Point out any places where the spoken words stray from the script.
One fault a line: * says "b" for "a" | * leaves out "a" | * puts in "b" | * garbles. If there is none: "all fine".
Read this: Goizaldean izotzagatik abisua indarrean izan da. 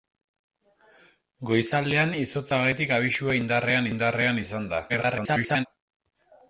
* puts in "indarrean"
* garbles